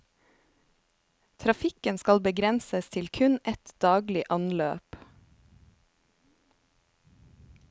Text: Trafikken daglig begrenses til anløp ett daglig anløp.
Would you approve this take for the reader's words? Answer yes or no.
no